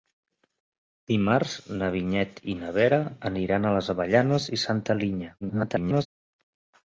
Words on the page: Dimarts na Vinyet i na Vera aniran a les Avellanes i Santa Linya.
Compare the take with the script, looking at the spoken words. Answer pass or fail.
fail